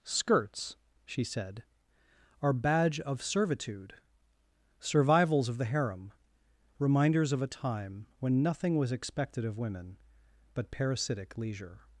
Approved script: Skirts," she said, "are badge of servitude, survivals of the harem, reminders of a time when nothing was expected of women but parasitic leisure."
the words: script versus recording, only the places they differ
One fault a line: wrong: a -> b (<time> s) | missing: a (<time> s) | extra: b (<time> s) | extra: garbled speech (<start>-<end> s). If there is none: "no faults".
no faults